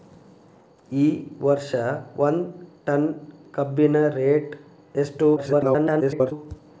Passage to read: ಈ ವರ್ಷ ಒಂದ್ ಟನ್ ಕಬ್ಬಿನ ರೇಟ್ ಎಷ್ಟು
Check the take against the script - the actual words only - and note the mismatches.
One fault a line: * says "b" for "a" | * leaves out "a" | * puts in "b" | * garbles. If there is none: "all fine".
* garbles